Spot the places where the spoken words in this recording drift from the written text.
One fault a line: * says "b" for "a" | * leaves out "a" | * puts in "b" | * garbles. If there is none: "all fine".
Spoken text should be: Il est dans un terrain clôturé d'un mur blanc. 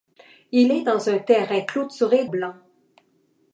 * leaves out "d'un mur"